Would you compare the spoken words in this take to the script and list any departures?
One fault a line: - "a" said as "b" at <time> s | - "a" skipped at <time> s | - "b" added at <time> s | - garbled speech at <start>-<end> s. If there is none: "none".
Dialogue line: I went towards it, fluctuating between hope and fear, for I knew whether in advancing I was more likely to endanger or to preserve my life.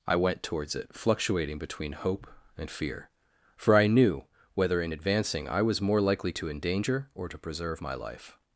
none